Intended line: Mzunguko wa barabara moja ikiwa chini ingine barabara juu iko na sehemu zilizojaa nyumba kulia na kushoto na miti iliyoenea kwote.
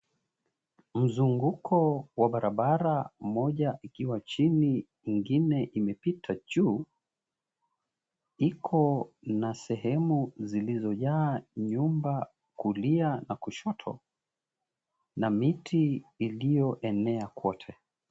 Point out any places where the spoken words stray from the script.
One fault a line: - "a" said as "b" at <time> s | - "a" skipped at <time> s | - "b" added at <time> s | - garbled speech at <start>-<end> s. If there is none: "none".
- "barabara" said as "imepita" at 5.6 s